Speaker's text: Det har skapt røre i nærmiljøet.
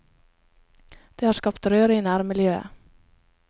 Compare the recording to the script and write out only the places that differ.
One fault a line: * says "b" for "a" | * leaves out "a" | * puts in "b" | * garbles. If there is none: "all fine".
all fine